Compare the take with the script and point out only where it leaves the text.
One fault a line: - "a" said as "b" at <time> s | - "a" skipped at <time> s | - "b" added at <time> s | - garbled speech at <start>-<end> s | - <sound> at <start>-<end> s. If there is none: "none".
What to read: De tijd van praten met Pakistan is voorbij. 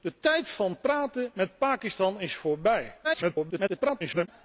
- garbled speech at 3.0-4.3 s